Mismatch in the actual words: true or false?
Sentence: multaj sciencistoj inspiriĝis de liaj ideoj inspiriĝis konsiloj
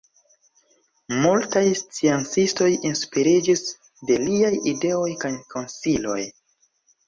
true